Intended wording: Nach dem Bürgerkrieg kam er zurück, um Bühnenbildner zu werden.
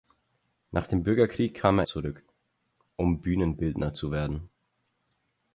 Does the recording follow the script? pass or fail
pass